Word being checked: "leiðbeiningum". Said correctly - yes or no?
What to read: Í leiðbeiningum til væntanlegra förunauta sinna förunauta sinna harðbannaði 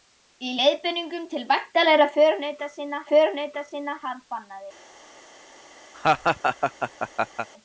yes